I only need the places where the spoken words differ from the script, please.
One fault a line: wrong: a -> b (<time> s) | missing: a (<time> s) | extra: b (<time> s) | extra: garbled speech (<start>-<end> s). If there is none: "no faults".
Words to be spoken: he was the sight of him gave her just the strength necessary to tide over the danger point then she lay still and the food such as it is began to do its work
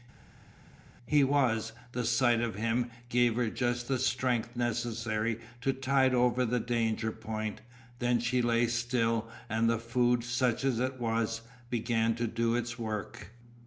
wrong: is -> was (11.0 s)